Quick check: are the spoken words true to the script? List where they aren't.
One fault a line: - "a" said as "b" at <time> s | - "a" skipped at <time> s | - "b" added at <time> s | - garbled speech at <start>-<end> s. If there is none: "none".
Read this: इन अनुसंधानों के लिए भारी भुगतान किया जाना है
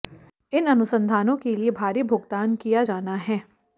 none